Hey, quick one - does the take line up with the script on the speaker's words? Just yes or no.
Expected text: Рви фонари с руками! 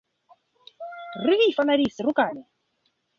yes